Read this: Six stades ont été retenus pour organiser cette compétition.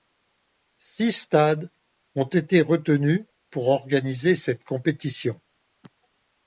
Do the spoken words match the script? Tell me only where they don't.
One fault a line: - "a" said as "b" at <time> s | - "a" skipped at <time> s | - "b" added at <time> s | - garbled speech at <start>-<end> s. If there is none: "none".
none